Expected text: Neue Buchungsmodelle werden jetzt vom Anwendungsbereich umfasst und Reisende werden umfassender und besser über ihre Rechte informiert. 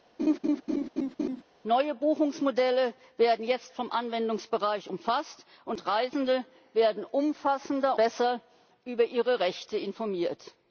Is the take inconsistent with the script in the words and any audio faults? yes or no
yes